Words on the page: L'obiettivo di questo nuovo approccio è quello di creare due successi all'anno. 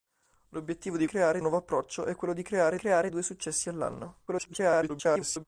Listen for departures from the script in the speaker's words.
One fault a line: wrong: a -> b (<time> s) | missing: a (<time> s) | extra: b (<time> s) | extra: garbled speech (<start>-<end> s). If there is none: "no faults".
wrong: questo -> creare (1.1 s)
extra: creare (2.8 s)
extra: garbled speech (4.3-5.5 s)